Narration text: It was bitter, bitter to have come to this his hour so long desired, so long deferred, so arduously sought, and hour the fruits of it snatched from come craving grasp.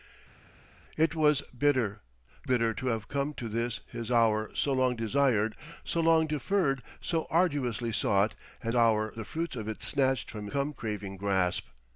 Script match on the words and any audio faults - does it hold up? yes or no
yes